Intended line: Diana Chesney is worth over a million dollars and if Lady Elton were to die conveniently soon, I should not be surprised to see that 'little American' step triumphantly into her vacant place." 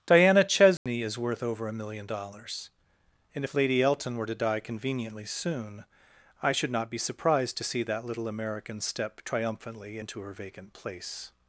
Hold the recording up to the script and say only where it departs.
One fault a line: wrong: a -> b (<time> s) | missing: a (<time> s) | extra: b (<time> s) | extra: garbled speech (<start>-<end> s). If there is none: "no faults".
no faults